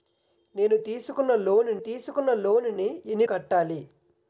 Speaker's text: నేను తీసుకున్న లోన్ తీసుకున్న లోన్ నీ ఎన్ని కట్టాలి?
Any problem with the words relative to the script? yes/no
no